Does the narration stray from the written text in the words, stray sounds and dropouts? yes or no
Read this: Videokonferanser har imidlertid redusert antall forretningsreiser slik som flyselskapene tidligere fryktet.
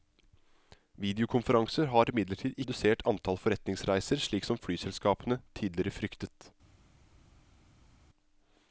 no